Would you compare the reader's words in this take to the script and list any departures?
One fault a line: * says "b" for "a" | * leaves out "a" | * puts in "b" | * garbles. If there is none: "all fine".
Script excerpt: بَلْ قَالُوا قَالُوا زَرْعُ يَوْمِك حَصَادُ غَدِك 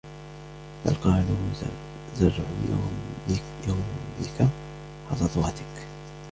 * leaves out "قَالُوا"